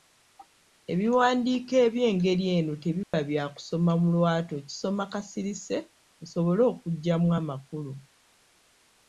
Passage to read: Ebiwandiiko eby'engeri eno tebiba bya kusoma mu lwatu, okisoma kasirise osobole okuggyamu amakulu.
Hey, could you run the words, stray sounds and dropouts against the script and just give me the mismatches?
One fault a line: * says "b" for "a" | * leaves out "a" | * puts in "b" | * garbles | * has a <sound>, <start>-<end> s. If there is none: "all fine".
* has a dropout, 3.0-3.1 s